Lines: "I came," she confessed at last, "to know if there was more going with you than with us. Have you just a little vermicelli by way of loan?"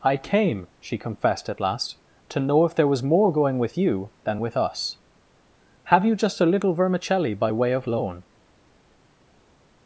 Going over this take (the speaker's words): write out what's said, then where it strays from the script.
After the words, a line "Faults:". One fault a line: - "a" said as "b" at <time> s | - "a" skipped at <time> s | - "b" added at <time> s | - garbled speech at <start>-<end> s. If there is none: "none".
"I came," she confessed at last, "to know if there was more going with you than with us. Have you just a little vermicelli by way of loan?"
Faults:
none